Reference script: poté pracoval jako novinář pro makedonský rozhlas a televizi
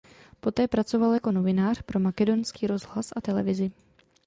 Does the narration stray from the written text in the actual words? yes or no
no